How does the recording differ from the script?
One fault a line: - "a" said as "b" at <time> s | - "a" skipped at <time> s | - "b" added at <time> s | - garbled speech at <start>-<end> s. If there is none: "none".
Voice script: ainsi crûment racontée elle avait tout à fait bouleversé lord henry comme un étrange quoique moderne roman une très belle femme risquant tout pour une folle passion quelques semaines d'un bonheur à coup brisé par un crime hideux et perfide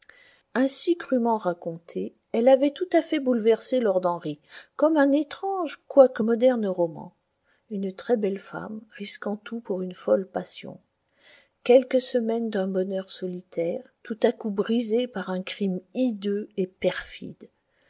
- "solitaire tout" added at 13.1 s